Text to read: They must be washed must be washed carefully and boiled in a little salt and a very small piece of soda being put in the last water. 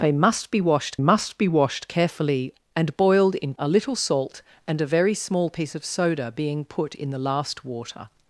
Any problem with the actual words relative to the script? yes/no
no